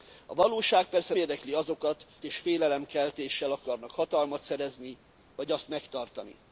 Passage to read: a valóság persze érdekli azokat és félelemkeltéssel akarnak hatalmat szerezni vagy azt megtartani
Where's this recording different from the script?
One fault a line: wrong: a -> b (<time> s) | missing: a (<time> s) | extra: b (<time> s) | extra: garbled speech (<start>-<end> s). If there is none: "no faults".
no faults